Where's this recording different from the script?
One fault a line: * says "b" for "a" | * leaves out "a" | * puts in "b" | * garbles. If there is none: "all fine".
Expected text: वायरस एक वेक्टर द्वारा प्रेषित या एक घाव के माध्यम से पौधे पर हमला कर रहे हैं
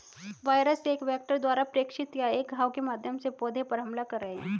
all fine